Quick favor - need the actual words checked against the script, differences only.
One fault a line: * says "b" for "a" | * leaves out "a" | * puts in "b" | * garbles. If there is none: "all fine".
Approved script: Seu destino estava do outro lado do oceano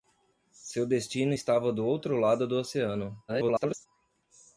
* garbles